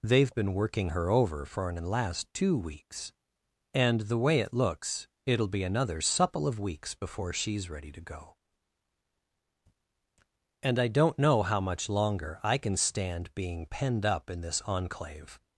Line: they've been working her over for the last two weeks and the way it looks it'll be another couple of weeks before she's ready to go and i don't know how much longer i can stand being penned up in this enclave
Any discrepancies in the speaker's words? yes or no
yes